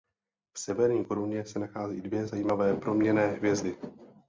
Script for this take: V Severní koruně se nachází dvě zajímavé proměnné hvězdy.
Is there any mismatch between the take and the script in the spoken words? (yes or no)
no